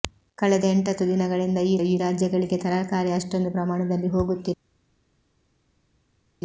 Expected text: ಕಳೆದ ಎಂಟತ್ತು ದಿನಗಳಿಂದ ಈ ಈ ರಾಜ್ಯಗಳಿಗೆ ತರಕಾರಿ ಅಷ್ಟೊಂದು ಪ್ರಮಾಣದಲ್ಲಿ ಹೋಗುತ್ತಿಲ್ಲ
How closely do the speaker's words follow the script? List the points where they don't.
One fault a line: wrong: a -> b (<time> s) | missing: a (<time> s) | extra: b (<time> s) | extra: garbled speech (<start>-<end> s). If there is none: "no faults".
no faults